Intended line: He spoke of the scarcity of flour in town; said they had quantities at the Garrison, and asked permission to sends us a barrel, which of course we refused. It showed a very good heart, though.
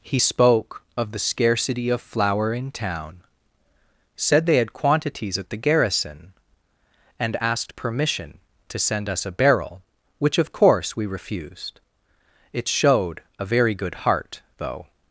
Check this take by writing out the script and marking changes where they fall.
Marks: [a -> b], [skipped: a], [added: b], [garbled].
He spoke of the scarcity of flour in town; said they had quantities at the Garrison, and asked permission to [sends -> send] us a barrel, which of course we refused. It showed a very good heart, though.